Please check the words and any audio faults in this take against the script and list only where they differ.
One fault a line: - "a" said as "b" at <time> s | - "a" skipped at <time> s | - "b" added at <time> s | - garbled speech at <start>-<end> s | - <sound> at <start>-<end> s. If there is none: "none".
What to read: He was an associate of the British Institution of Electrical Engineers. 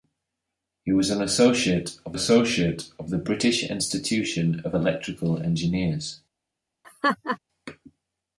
- "associate of" added at 2.1 s
- laugh at 6.8-7.4 s